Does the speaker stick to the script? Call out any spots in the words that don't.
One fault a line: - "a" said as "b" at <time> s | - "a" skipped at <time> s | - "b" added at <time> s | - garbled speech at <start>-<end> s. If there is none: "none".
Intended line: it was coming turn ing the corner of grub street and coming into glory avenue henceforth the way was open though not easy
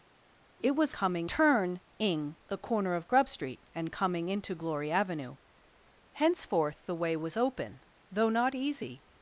none